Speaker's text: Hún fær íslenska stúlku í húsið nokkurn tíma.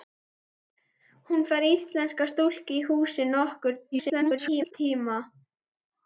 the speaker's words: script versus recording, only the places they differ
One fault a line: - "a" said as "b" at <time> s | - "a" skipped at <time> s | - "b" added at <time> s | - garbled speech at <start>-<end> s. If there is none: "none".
- garbled speech at 3.9-4.7 s